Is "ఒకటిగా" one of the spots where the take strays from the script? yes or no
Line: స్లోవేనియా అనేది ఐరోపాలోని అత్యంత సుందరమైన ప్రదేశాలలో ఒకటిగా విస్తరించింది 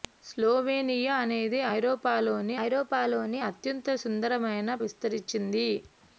yes